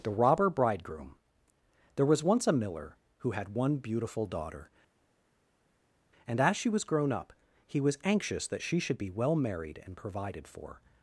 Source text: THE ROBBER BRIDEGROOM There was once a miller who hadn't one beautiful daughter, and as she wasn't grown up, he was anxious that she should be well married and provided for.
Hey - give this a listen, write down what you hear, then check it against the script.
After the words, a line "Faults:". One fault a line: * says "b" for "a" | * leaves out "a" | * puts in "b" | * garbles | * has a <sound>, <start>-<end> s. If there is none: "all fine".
THE ROBBER BRIDEGROOM There was once a miller who had one beautiful daughter, and as she was grown up, he was anxious that she should be well married and provided for.
Faults:
* says "had" for "hadn't"
* says "was" for "wasn't"